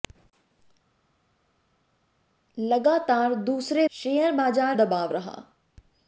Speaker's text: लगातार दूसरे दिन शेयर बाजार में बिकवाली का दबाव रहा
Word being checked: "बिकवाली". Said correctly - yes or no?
no